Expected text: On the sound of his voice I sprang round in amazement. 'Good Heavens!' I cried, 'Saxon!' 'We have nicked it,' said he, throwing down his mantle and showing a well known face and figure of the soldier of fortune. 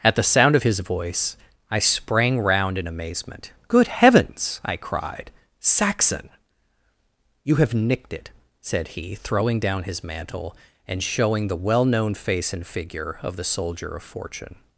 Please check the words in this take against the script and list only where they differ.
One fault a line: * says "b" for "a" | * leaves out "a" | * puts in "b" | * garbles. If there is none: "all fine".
* says "At" for "On"
* says "You" for "We"
* says "the" for "a"